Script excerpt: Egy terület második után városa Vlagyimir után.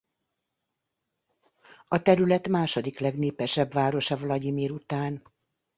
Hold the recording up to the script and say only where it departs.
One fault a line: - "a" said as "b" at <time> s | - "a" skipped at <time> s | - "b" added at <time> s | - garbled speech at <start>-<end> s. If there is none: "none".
- "Egy" said as "A" at 1.9 s
- "után" said as "legnépesebb" at 3.0 s